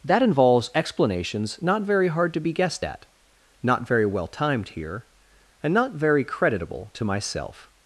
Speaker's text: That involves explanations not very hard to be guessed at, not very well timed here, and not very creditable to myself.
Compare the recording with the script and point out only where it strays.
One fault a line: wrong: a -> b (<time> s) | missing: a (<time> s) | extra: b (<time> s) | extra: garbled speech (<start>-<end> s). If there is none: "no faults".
no faults